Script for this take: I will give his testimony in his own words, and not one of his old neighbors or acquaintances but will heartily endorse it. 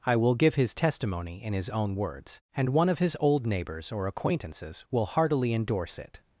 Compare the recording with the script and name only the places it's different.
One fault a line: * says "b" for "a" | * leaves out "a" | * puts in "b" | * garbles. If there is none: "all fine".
* leaves out "not"
* leaves out "but"